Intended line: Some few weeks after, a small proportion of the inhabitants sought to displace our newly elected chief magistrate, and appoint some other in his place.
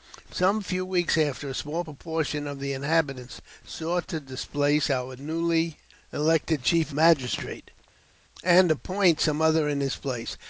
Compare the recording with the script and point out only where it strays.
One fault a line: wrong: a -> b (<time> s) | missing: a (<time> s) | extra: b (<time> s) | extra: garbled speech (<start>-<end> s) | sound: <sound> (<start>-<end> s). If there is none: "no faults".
no faults